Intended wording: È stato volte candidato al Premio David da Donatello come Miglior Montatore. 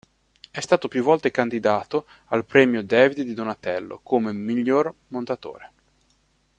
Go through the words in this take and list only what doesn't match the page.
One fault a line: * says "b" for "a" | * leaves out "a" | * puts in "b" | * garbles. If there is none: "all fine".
* puts in "più"
* says "di" for "da"